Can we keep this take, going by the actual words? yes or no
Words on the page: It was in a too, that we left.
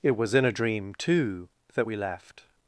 no